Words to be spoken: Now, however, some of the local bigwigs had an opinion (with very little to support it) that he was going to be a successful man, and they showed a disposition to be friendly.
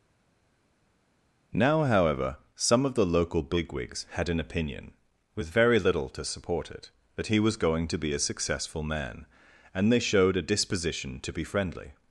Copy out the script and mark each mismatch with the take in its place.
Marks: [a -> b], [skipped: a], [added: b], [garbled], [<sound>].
Now, however, some of the local bigwigs had an opinion (with very little to support it) that he was going to be a successful man, and they showed a disposition to be friendly.